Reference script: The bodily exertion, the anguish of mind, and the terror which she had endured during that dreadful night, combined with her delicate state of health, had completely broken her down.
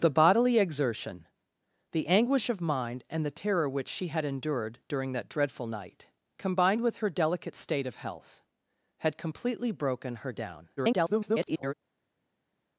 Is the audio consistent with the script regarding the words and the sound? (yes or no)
no